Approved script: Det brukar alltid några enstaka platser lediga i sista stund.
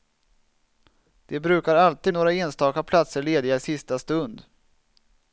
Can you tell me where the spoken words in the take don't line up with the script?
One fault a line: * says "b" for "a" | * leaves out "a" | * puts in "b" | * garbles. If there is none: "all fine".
all fine